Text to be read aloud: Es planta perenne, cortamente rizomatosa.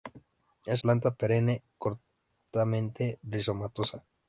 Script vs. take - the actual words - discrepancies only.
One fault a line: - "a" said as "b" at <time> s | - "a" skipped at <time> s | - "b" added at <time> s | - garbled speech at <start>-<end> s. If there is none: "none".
none